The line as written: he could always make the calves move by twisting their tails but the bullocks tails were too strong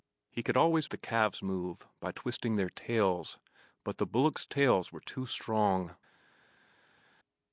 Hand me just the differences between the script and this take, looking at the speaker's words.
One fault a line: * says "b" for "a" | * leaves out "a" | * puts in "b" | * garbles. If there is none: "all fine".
* leaves out "make"